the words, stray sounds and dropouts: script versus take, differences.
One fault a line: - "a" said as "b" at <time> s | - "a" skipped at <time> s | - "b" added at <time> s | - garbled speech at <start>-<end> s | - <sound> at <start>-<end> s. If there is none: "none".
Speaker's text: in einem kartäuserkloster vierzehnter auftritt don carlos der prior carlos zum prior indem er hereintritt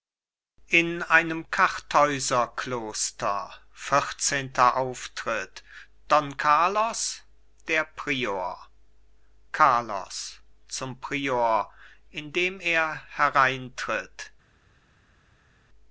none